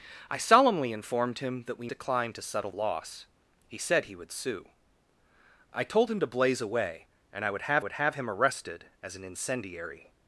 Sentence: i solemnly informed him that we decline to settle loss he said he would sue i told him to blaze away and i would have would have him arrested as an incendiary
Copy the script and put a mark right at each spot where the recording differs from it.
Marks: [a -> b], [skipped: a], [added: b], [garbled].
i solemnly informed him that we decline to settle loss he said he would sue i told him to blaze away and i would have would have him arrested as an incendiary